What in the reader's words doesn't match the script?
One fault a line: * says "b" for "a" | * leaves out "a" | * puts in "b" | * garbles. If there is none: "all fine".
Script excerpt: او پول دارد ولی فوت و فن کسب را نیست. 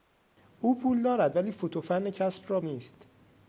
all fine